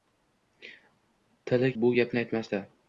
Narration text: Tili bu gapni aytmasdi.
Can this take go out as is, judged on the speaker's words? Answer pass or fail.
pass